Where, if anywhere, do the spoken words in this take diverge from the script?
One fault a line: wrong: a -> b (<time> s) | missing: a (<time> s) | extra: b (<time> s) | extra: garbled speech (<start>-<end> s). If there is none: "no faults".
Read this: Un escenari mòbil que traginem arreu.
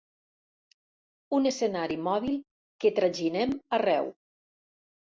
no faults